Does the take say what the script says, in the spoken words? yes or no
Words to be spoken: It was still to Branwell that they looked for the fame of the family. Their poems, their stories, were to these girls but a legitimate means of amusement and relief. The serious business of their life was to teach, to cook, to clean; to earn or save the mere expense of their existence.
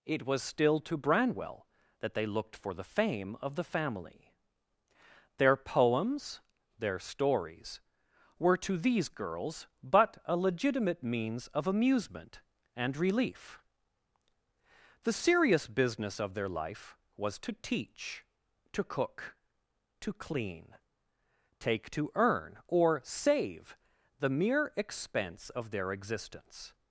no